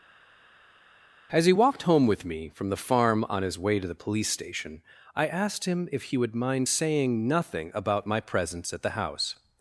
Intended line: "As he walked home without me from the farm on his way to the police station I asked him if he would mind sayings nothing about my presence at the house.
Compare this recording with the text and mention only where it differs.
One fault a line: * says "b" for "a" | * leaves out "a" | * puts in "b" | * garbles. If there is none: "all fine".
* says "with" for "without"
* says "saying" for "sayings"